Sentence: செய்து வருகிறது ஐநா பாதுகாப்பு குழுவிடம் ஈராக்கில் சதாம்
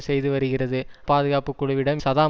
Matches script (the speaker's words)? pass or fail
fail